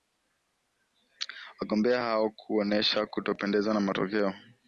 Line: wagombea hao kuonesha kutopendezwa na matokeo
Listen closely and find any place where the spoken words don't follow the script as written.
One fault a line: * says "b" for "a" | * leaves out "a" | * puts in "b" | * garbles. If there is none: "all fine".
all fine